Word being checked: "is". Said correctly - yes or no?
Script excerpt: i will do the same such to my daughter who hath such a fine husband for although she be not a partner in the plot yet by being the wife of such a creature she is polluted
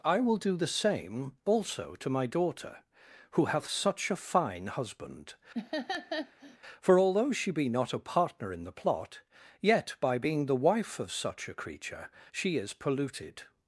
yes